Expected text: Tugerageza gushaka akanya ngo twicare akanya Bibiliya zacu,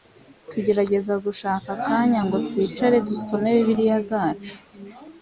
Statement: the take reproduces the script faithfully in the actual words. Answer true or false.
false